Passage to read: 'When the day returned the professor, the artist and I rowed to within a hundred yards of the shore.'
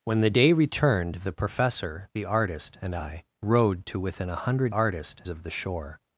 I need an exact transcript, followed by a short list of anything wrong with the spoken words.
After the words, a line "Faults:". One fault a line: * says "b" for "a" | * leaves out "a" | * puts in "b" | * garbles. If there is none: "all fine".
'When the day returned the professor, the artist and I rowed to within a hundred artist of the shore.'
Faults:
* says "artist" for "yards"